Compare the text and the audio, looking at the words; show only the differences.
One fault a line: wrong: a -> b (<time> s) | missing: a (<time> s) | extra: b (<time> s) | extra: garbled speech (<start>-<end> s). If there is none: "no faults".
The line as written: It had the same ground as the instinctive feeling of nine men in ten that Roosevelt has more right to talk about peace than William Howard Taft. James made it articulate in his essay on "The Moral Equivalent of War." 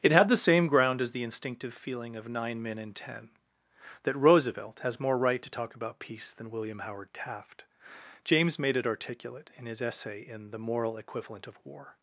wrong: on -> in (10.2 s)